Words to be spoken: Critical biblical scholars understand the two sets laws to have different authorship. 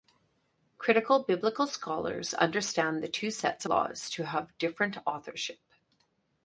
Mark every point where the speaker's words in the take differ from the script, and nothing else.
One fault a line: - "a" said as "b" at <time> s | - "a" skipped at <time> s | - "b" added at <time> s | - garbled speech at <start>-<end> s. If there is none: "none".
none